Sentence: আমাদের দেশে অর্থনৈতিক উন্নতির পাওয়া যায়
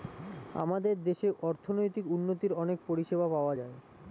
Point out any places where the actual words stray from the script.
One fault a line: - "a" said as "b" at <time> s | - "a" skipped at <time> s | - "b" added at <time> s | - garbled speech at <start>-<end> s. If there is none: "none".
- "অনেক পরিষেবা" added at 2.5 s